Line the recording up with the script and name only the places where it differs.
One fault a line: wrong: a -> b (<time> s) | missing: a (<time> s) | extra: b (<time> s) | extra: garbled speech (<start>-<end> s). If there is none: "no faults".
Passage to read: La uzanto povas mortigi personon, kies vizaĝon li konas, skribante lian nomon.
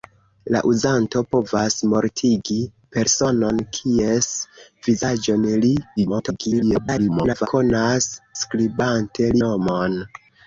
extra: garbled speech (6.0-7.5 s)
missing: lian (9.3 s)